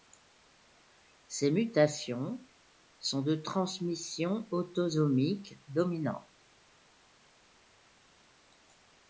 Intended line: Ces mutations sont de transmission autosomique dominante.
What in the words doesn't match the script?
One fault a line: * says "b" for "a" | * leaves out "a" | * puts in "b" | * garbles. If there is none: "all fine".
all fine